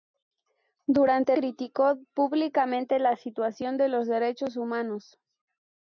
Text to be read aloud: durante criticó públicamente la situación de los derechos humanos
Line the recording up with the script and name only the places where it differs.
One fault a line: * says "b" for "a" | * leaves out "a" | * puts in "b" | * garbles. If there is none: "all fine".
all fine